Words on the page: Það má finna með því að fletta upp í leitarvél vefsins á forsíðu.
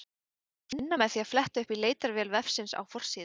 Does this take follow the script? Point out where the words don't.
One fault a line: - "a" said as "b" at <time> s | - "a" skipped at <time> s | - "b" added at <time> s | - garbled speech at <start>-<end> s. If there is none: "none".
none